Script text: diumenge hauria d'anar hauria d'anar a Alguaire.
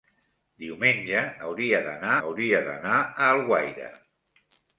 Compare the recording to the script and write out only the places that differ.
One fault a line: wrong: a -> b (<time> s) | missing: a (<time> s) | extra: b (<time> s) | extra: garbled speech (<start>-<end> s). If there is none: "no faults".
no faults